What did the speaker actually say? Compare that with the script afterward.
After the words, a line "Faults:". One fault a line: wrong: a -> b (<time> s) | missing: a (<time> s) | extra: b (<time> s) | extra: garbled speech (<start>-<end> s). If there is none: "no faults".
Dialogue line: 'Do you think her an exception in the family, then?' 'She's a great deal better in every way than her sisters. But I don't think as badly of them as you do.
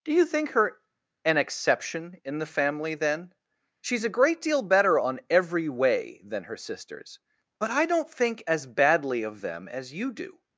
'Do you think her an exception in the family, then?' 'She's a great deal better on every way than her sisters. But I don't think as badly of them as you do.
Faults:
wrong: in -> on (5.0 s)